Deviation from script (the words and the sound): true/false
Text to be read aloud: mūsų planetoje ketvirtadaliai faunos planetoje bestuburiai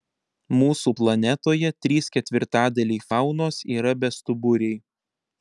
true